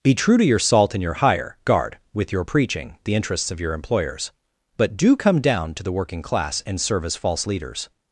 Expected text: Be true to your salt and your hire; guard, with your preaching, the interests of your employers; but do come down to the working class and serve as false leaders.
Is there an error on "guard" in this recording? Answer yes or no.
no